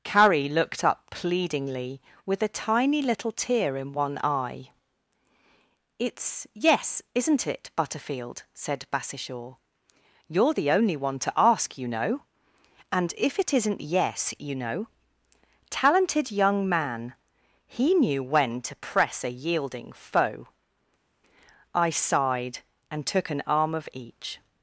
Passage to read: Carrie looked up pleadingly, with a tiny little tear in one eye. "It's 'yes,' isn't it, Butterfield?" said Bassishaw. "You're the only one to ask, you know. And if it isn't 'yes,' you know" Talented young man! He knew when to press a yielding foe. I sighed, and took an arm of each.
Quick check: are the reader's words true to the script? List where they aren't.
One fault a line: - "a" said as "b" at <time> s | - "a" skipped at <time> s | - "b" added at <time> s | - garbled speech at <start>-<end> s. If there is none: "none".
none